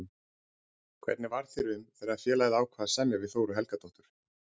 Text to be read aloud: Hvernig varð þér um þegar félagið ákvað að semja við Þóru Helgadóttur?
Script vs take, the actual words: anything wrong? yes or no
no